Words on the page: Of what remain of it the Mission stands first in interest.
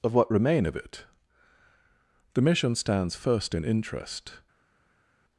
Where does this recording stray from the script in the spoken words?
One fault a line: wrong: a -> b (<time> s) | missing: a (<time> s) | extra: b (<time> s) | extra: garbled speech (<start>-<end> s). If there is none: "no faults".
no faults